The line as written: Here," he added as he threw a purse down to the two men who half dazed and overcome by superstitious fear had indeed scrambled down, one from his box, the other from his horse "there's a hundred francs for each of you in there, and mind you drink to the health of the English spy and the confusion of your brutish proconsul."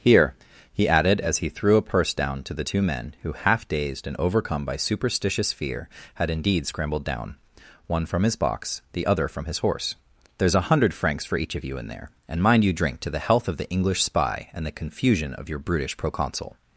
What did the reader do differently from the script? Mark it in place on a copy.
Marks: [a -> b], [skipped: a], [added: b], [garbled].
Here," he added as he threw a purse down to the two men who half dazed and overcome by superstitious fear had indeed scrambled down, one from his box, the other from his horse "there's a hundred francs for each of you in there, and mind you drink to the health of the English spy and the confusion of your brutish proconsul."